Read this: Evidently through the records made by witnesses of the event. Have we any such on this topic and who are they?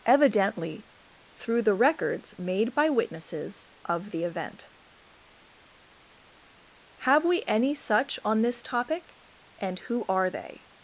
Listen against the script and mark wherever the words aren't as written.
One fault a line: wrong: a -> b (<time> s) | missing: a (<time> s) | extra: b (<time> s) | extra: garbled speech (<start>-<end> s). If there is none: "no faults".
no faults